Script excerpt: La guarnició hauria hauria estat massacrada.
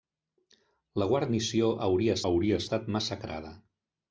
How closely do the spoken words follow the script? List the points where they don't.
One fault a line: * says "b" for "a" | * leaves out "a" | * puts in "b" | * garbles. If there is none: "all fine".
all fine